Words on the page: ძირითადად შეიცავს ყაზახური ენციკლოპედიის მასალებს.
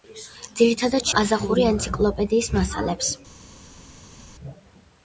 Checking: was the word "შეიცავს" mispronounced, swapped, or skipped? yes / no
yes